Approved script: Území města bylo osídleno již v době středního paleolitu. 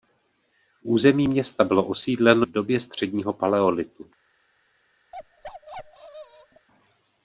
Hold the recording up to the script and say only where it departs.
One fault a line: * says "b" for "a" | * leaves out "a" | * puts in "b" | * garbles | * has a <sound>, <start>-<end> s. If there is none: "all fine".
* leaves out "již"
* has a bark, 5.1-6.7 s